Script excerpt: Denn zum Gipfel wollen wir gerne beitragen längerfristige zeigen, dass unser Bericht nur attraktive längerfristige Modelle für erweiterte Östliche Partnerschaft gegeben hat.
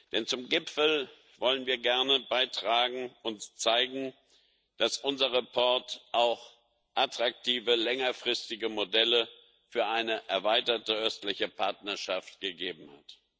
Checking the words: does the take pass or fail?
fail